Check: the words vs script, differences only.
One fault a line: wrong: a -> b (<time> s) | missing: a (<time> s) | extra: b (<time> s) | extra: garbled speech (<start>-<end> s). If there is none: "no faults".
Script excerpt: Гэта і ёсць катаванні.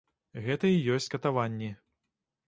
no faults